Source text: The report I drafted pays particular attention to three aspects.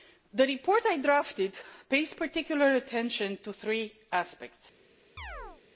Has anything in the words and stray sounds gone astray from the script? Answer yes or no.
yes